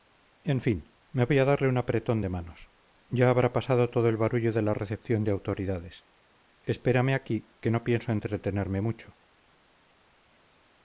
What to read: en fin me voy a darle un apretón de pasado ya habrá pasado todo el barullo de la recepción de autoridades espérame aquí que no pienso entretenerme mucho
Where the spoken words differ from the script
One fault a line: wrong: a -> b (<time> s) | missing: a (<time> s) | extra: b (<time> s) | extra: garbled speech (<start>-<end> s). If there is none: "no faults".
wrong: pasado -> manos (2.3 s)